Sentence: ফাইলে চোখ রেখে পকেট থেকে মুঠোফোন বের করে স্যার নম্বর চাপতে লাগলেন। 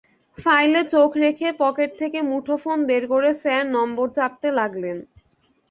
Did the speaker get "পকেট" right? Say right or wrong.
right